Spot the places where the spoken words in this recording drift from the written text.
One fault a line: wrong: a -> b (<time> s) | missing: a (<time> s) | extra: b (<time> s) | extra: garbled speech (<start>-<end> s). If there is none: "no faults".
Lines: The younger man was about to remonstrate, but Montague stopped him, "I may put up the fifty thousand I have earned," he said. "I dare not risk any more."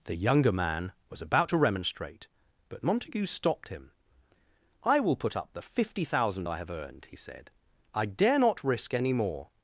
wrong: may -> will (5.0 s)